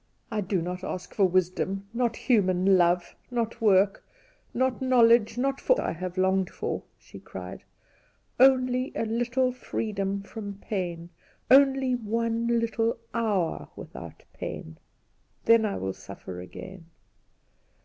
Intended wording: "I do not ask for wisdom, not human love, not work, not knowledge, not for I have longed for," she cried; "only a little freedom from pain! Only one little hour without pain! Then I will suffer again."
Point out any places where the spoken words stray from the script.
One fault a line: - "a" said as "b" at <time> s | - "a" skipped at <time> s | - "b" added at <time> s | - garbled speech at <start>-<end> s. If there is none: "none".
none